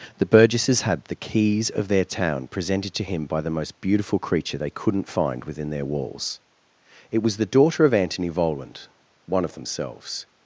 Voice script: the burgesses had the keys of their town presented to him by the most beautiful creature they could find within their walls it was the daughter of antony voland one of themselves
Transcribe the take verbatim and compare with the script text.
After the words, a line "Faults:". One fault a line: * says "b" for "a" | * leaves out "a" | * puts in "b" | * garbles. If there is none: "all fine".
the burgesses had the keys of their town presented to him by the most beautiful creature they couldn't find within their walls it was the daughter of antony voland one of themselves
Faults:
* says "couldn't" for "could"